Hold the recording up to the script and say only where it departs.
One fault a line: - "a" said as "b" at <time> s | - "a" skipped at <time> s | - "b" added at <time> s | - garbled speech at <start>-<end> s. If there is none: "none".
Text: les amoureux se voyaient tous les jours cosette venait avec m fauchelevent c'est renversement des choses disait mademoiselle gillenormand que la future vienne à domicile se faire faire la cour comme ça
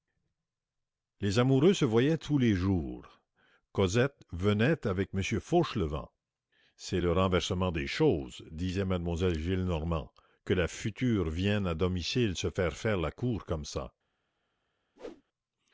- "le" added at 7.0 s